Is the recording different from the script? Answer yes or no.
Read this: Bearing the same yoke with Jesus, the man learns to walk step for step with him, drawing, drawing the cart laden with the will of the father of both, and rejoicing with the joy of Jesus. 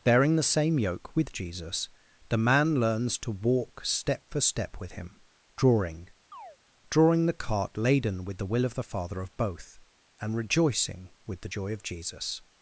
no